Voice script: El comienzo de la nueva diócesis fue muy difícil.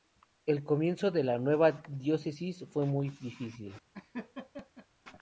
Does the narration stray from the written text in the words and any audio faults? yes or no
yes